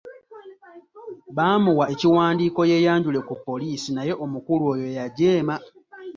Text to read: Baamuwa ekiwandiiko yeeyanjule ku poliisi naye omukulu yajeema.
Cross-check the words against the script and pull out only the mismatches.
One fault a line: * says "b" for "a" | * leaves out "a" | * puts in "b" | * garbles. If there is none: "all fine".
* puts in "oyo"